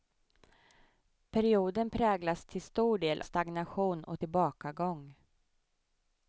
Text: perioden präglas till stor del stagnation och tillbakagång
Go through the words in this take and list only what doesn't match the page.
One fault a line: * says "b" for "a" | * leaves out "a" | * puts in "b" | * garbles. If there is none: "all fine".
all fine